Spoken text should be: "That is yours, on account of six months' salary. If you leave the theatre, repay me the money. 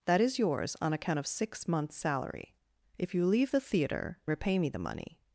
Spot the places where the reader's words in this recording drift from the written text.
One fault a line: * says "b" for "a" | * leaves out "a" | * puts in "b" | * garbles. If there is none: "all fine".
all fine